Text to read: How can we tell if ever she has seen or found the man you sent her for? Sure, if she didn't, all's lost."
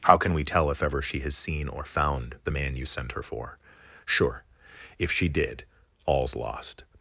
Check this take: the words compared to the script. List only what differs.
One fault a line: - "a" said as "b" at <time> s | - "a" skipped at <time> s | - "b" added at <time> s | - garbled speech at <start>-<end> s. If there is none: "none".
- "didn't" said as "did" at 5.3 s